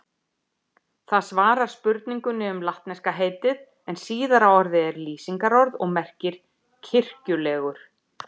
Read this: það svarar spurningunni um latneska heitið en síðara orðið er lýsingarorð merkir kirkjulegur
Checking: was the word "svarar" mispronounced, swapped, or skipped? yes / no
no